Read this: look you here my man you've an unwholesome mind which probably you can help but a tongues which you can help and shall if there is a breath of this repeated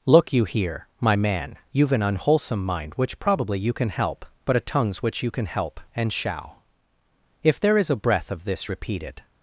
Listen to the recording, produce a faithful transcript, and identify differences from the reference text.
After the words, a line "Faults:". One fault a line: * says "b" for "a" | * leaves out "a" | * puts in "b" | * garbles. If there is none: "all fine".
look you here my man you've an unwholesome mind which probably you can help but a tongues which you can help and shall if there is a breath of this repeated
Faults:
all fine